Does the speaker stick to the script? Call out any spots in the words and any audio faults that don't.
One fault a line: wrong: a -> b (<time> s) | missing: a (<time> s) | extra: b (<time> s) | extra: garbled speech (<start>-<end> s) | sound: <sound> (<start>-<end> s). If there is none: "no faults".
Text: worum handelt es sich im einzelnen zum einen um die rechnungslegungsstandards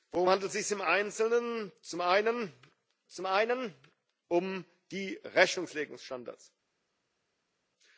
extra: zum einen (3.1 s)